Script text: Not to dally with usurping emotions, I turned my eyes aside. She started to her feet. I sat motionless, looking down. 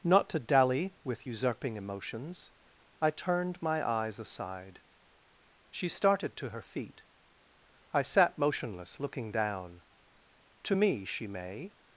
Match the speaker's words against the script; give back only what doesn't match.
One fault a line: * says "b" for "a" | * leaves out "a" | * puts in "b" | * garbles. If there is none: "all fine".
* puts in "To me she may"